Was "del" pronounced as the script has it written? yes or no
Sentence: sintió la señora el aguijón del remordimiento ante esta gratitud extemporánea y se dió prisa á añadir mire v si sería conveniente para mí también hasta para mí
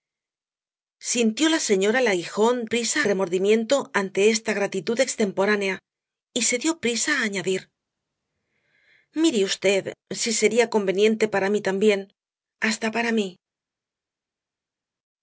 no